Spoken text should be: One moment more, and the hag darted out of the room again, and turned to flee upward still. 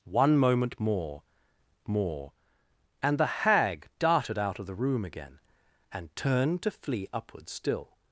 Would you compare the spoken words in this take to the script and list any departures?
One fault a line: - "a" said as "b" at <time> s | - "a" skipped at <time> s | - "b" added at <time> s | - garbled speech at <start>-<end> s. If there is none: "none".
- "more" added at 1.9 s